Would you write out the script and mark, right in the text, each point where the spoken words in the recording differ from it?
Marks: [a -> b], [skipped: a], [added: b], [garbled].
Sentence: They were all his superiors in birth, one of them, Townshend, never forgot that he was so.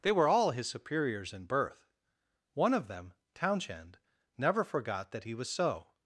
They were all his superiors in birth, one of them, Townshend, never forgot that he was so.